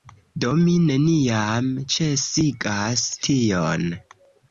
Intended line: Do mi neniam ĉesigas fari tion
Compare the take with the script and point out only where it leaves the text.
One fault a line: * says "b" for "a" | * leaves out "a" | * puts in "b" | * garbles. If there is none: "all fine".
* leaves out "fari"